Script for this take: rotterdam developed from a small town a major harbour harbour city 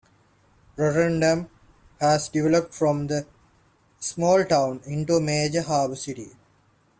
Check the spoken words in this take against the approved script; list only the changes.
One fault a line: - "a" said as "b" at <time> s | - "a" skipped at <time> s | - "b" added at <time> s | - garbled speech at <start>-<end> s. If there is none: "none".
- "has" added at 2.0 s
- "into" added at 4.8 s
- "harbour" skipped at 6.0 s